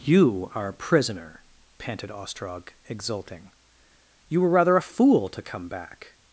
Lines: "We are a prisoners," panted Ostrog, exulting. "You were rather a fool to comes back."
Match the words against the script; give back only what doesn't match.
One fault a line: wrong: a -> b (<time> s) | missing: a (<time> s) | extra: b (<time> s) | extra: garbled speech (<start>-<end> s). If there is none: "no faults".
wrong: We -> You (0.0 s)
wrong: prisoners -> prisoner (0.7 s)
wrong: comes -> come (5.4 s)